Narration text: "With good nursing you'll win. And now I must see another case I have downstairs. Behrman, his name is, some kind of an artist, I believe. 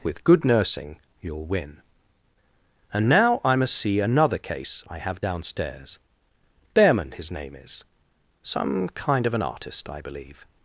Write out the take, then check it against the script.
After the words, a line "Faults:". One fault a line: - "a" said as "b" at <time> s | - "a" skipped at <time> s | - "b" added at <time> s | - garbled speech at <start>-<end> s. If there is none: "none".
"With good nursing you'll win. And now I must see another case I have downstairs. Behrman, his name is, some kind of an artist, I believe.
Faults:
none